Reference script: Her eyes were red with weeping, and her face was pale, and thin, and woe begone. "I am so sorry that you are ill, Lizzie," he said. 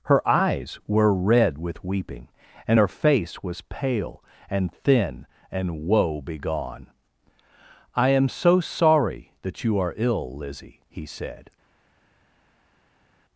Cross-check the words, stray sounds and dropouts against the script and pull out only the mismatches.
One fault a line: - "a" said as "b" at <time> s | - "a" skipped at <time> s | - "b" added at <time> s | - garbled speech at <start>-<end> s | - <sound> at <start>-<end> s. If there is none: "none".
none